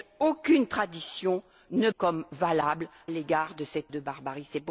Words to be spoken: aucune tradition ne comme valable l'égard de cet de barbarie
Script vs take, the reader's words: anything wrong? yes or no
no